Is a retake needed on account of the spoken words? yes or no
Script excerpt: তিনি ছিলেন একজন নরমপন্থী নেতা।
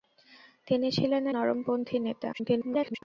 yes